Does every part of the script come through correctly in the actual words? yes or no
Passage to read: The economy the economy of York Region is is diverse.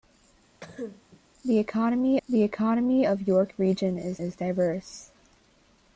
yes